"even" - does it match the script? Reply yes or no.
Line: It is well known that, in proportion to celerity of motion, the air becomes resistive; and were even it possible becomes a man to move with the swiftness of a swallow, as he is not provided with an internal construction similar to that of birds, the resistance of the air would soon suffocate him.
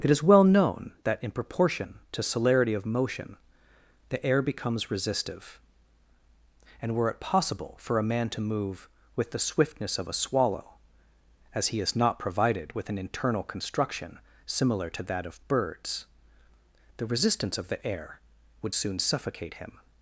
no